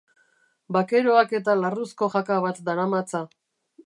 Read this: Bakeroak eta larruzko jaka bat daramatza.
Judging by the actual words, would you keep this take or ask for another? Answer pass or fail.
pass